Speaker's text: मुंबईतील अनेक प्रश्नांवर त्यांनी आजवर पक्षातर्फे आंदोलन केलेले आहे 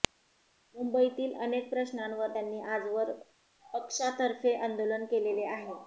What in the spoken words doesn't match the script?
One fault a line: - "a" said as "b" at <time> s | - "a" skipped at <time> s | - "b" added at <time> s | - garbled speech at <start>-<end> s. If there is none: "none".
none